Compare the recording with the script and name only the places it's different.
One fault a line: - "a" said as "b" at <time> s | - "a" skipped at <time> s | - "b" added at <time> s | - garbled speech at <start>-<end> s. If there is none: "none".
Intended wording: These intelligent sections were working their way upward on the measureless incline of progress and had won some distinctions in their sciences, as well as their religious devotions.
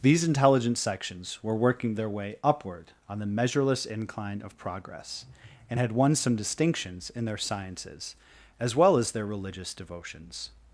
none